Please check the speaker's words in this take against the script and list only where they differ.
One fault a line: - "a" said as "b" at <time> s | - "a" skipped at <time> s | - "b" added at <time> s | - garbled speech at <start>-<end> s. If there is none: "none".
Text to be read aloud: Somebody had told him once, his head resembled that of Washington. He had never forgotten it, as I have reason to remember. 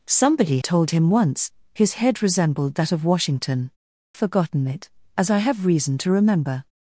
- "had" skipped at 0.6 s
- "He had never" skipped at 3.7 s